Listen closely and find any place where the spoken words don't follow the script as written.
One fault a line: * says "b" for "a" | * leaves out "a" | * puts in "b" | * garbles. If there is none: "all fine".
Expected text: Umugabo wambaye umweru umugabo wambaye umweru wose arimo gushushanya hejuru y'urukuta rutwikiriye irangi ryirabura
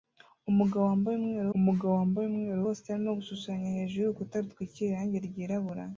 all fine